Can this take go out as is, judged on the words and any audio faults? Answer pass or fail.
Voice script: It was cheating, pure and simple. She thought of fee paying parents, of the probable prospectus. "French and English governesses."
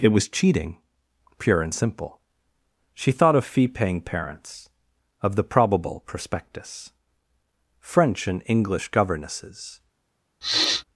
fail